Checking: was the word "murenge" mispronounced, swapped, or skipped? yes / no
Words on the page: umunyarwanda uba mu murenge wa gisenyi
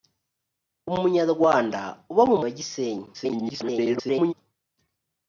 yes